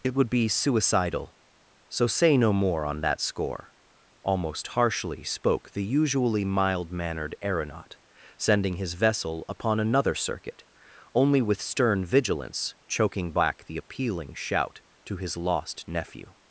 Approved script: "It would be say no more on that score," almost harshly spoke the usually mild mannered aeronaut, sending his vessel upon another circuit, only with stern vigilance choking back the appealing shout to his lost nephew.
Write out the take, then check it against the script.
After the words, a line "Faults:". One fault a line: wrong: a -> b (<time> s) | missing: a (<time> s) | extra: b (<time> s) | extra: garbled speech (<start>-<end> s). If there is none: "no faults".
"It would be suicidal, so say no more on that score," almost harshly spoke the usually mild mannered aeronaut, sending his vessel upon another circuit, only with stern vigilance choking back the appealing shout to his lost nephew.
Faults:
extra: suicidal so (0.5 s)